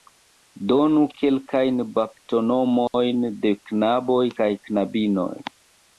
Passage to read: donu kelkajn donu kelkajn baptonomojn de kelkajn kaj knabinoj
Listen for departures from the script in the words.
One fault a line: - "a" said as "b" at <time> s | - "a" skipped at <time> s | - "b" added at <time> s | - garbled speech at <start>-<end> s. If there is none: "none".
- "donu kelkajn" skipped at 1.8 s
- "kelkajn" said as "knaboj" at 3.7 s